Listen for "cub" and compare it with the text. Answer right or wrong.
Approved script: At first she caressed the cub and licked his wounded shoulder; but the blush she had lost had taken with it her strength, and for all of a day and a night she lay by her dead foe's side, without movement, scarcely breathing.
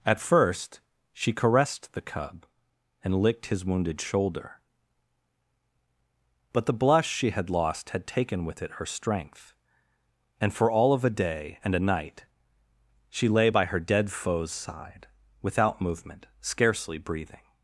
right